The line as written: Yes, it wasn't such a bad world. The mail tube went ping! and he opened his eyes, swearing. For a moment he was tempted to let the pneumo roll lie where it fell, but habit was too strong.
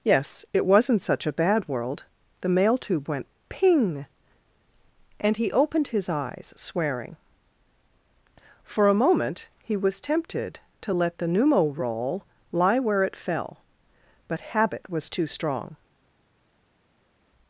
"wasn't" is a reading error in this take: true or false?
false